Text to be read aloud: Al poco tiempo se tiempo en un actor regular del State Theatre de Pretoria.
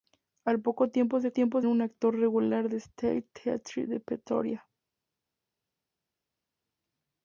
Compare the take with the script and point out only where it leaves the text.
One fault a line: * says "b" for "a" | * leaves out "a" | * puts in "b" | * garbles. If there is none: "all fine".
all fine